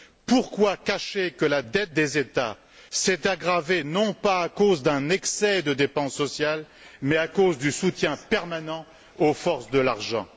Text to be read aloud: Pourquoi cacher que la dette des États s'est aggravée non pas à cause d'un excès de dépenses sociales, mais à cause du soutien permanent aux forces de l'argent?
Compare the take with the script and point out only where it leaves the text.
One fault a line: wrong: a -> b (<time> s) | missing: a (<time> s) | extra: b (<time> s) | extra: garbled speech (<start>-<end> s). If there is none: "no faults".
no faults